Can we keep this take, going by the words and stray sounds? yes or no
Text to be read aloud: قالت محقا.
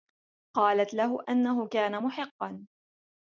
no